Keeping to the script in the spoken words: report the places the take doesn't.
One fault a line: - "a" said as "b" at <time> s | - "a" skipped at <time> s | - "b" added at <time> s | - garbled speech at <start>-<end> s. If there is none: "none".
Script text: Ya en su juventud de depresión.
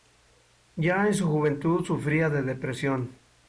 - "sufría" added at 1.8 s